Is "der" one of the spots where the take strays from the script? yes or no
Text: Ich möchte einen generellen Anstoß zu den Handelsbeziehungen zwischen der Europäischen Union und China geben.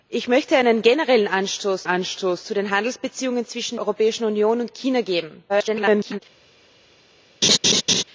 yes